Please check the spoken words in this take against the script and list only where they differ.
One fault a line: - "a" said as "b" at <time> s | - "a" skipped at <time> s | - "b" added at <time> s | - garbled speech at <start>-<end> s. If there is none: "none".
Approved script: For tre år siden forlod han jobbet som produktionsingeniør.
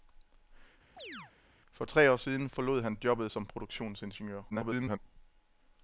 - garbled speech at 4.5-5.0 s